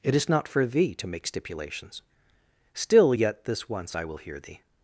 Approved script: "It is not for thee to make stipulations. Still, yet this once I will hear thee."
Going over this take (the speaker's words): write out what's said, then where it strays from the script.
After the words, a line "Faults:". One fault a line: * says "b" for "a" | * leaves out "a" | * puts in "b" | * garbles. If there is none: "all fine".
"It is not for thee to make stipulations. Still, yet this once I will hear thee."
Faults:
all fine